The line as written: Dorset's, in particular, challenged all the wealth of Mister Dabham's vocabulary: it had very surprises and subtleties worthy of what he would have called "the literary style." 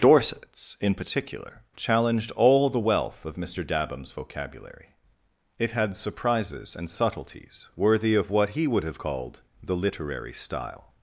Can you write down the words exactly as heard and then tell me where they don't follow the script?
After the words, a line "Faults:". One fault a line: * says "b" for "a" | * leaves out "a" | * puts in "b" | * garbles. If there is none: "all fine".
Dorset's, in particular, challenged all the wealth of Mister Dabham's vocabulary: it had surprises and subtleties worthy of what he would have called "the literary style."
Faults:
* leaves out "very"